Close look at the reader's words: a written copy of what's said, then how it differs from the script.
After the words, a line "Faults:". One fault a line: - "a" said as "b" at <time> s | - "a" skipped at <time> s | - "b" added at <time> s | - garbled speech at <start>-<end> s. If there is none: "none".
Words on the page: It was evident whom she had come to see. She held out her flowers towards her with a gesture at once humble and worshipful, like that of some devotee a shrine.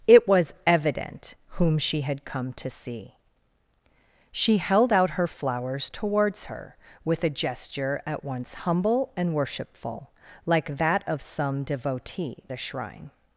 It was evident whom she had come to see. She held out her flowers towards her with a gesture at once humble and worshipful, like that of some devotee a shrine.
Faults:
none